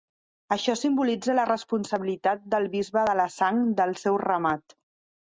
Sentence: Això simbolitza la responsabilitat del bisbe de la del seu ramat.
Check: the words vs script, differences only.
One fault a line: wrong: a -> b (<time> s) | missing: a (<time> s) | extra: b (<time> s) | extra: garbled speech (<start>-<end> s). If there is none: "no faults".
extra: sang (3.3 s)